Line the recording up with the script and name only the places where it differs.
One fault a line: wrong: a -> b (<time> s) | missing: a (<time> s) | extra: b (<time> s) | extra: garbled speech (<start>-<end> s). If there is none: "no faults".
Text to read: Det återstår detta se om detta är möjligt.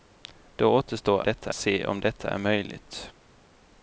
no faults